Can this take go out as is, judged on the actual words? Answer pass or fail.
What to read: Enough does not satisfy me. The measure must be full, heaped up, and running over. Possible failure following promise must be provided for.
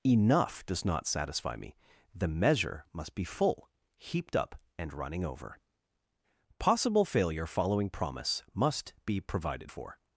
pass